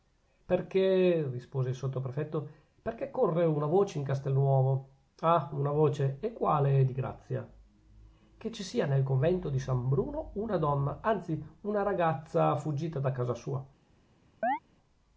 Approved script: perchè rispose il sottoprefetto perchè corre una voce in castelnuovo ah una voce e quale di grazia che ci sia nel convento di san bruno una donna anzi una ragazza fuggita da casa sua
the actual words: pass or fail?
pass